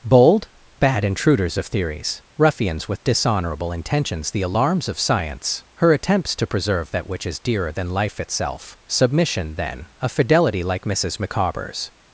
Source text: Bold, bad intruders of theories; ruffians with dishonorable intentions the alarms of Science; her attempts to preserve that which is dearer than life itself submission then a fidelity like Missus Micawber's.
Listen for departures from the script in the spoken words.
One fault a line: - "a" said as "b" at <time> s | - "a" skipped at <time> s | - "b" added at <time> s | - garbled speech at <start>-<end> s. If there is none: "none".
none